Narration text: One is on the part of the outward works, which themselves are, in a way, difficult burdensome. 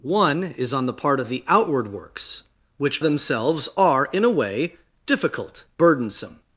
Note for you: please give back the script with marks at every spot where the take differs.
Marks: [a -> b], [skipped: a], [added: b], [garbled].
One is on the part of the outward works, which themselves are, in a way, difficult burdensome.